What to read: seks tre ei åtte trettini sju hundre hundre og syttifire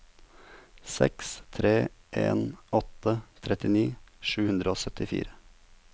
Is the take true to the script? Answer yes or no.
no